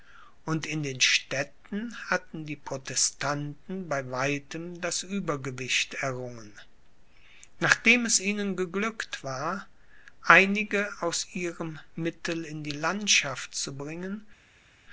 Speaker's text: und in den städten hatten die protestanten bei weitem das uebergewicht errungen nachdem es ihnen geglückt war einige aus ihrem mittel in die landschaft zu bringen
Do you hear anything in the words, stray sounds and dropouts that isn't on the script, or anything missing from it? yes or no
no